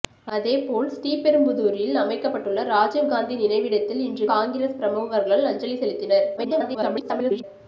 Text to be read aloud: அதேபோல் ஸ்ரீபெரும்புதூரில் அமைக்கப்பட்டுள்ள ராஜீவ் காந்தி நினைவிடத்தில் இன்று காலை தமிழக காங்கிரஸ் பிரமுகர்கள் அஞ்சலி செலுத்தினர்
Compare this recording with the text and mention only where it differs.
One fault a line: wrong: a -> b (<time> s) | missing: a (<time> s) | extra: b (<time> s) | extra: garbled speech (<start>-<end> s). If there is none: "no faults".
missing: காலை தமிழக (4.3 s)
extra: garbled speech (6.4-7.4 s)